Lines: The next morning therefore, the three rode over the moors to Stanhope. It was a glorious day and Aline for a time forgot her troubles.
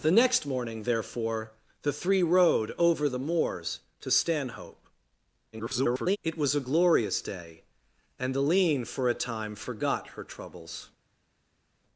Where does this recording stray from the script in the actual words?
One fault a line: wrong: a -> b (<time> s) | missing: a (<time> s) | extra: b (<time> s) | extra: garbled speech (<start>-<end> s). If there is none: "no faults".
extra: garbled speech (5.5-6.2 s)